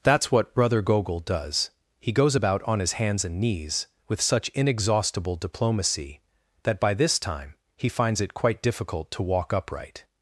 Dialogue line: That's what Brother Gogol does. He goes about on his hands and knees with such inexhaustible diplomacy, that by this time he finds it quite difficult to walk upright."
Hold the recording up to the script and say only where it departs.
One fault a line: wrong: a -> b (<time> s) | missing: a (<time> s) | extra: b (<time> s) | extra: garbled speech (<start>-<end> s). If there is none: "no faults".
no faults